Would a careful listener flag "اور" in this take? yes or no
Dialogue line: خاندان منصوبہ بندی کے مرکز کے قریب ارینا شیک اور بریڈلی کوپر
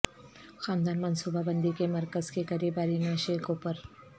yes